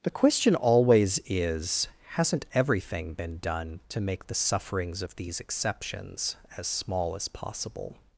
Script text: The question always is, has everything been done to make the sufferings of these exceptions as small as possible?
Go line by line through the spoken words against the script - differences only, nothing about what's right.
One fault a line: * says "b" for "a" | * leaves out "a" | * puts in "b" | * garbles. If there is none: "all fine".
* says "hasn't" for "has"